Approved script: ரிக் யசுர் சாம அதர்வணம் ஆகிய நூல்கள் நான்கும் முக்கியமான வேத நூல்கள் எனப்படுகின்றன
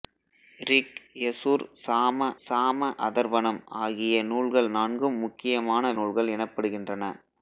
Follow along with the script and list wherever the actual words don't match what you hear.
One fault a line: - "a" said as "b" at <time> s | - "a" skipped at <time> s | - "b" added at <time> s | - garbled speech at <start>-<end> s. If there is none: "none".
- "சாம" added at 2.4 s
- "வேத" skipped at 5.9 s